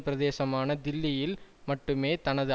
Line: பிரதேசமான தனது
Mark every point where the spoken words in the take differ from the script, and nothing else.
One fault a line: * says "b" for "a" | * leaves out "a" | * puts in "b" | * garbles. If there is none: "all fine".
* puts in "தில்லியில் மட்டுமே"